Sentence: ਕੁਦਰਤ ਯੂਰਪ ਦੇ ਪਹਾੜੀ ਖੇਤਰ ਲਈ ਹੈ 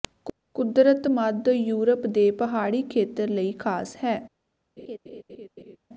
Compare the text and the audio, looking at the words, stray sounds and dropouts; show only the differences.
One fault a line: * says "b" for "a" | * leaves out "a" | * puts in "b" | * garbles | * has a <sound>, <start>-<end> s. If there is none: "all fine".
* puts in "ਮੱਧ"
* puts in "ਖਾਸ"
* has a laugh, 4.8-5.8 s